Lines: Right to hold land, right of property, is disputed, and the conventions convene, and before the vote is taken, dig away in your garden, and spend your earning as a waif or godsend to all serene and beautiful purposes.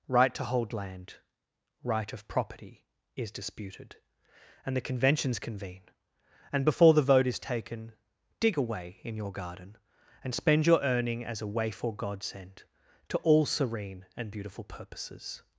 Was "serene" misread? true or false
false